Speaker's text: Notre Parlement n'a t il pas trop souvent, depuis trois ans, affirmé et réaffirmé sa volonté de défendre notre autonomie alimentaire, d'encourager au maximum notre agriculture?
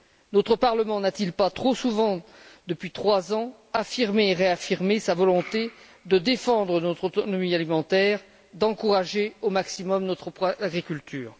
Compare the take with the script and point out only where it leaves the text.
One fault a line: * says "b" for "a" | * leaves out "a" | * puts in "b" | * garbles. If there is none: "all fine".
all fine